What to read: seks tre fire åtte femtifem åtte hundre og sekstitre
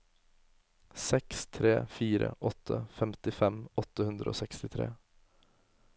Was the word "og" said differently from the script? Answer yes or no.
no